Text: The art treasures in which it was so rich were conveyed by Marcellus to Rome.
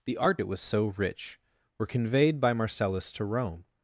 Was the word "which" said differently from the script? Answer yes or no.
yes